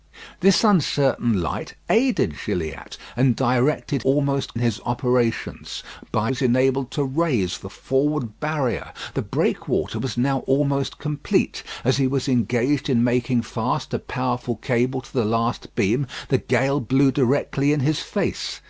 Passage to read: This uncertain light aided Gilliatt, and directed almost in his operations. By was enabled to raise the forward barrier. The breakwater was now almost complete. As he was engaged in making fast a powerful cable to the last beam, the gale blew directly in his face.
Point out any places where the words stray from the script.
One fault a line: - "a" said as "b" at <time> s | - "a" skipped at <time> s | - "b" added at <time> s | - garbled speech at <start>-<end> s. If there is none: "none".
none